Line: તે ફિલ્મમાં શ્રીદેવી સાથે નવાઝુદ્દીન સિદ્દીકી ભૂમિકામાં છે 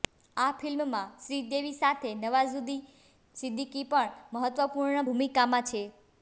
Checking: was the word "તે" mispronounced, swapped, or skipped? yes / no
yes